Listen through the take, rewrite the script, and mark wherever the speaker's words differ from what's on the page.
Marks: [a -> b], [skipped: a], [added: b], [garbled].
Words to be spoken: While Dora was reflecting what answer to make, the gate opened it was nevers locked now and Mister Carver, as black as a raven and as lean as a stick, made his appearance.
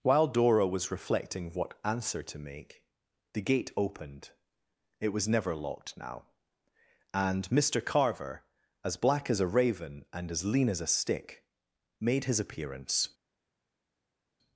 While Dora was reflecting what answer to make, the gate opened it was [nevers -> never] locked now and Mister Carver, as black as a raven and as lean as a stick, made his appearance.